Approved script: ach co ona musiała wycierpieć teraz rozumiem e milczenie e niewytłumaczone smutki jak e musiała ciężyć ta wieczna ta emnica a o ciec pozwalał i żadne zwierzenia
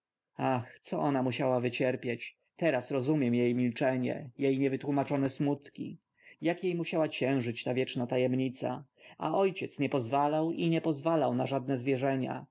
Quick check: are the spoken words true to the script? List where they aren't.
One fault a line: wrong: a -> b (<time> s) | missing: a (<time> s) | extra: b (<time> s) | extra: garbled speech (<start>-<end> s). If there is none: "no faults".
extra: nie (9.8 s)
extra: nie pozwalał na (10.7 s)